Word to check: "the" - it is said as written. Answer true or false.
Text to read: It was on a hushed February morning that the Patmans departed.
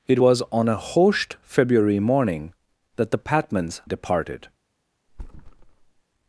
true